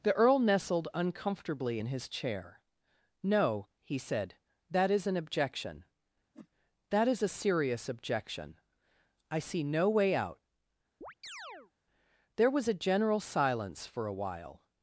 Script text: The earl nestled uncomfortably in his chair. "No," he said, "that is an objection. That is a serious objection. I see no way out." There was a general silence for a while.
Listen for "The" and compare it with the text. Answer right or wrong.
right